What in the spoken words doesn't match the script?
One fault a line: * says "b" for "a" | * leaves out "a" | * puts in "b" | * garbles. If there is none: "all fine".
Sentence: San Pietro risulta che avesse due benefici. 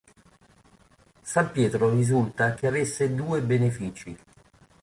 all fine